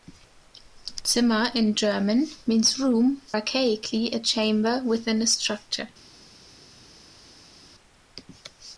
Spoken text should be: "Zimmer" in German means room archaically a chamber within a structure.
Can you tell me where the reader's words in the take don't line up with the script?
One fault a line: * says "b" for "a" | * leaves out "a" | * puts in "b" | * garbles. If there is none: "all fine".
all fine